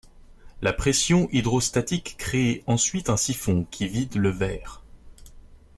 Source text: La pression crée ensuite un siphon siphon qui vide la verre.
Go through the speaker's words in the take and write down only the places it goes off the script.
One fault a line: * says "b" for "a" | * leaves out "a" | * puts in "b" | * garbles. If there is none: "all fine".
* puts in "hydrostatique"
* leaves out "siphon"
* says "le" for "la"